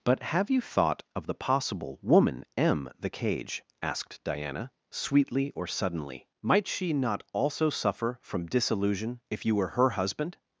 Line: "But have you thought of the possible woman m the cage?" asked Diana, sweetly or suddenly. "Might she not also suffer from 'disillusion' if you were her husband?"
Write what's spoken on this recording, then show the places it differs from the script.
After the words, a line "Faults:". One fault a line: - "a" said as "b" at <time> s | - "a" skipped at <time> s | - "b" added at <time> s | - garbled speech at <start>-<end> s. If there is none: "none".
"But have you thought of the possible woman m the cage?" asked Diana, sweetly or suddenly. "Might she not also suffer from 'disillusion' if you were her husband?"
Faults:
none